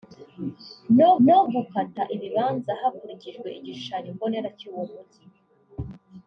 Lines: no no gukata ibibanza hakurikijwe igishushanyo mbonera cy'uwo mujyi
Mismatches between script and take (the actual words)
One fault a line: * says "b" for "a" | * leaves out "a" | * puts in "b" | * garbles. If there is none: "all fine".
all fine